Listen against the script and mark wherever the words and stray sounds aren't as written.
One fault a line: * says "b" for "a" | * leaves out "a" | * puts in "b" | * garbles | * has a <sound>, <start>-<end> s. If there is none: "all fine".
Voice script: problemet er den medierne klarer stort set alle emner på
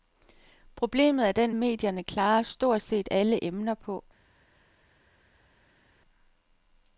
all fine